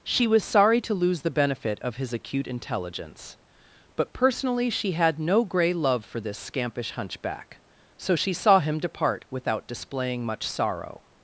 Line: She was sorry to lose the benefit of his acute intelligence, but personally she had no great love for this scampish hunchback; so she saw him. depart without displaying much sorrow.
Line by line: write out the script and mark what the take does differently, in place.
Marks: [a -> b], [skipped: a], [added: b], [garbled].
She was sorry to lose the benefit of his acute intelligence, but personally she had no [great -> grey] love for this scampish hunchback; so she saw him. depart without displaying much sorrow.